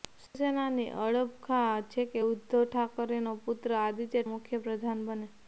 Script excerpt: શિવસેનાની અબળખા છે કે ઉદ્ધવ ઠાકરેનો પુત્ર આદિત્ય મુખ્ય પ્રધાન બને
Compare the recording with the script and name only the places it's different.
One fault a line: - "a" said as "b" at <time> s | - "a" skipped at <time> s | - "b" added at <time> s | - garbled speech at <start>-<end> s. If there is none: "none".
none